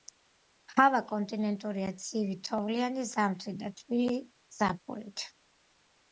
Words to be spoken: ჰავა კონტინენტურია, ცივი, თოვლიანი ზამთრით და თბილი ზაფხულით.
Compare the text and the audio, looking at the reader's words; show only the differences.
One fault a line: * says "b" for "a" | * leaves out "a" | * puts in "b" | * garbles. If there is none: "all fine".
all fine